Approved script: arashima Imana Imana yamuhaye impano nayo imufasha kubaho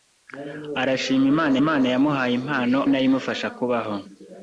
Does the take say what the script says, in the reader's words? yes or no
yes